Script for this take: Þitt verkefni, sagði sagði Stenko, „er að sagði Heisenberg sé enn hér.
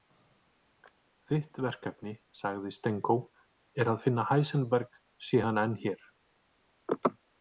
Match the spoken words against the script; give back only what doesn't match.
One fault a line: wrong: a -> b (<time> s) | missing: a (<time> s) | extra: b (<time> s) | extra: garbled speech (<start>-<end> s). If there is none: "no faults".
missing: sagði (2.7 s)
wrong: sagði -> finna (4.0 s)
extra: hann (5.5 s)